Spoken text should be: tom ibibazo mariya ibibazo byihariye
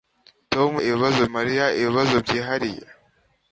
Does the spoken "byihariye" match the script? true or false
true